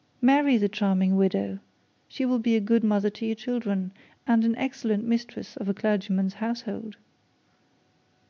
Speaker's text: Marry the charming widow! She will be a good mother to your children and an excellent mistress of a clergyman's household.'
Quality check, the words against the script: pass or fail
pass